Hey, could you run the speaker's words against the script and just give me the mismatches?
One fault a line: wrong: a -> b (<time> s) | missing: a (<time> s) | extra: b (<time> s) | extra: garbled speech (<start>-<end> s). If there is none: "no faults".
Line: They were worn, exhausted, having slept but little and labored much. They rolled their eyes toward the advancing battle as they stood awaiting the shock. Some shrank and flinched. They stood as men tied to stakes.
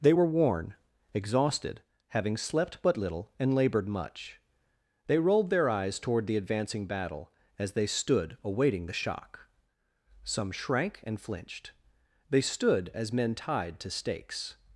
no faults